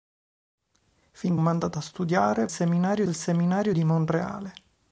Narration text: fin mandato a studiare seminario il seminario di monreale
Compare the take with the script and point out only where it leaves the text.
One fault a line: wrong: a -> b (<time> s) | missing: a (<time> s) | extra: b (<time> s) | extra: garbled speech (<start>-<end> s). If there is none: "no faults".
no faults